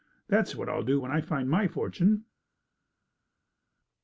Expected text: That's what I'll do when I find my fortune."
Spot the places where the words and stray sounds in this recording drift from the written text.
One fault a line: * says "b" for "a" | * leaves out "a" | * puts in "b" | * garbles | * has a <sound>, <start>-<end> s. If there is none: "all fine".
all fine